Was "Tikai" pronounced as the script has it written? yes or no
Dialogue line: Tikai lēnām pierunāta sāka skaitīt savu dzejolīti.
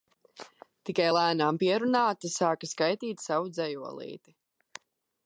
yes